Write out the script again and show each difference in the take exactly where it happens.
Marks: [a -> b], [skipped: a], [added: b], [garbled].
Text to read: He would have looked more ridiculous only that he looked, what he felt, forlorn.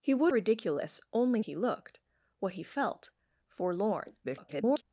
He would [skipped: have looked more] ridiculous only [skipped: that] he looked, what he felt, forlorn. [garbled]